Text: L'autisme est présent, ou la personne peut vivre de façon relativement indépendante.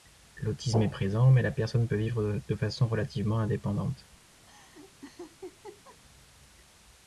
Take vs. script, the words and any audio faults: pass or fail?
fail